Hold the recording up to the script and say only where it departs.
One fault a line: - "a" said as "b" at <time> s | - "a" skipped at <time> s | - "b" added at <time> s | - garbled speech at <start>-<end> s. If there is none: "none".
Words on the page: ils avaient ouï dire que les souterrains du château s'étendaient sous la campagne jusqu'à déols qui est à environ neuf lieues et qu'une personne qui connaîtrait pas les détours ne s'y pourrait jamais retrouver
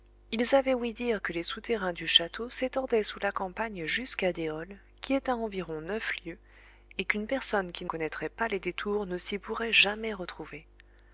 none